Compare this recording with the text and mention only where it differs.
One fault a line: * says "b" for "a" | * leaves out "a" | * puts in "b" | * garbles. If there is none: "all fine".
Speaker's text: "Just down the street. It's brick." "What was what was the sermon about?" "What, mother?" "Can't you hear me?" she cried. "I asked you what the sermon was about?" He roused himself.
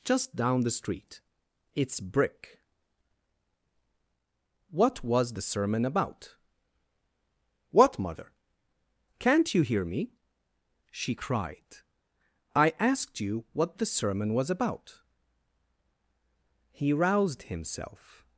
* leaves out "what was"